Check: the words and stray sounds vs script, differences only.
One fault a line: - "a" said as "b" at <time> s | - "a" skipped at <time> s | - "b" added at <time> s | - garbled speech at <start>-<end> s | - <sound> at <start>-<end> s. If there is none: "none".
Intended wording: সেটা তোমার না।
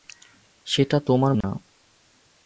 - dropout at 1.4-1.4 s